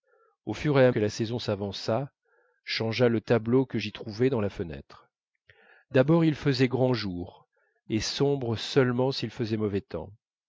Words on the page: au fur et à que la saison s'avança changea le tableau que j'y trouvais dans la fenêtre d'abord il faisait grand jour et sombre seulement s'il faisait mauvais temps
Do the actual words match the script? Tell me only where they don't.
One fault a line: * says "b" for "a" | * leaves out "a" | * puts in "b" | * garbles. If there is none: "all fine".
all fine